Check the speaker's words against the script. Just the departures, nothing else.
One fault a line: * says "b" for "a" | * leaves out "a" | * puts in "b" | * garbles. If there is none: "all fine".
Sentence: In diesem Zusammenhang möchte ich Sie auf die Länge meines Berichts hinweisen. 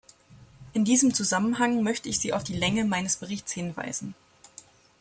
all fine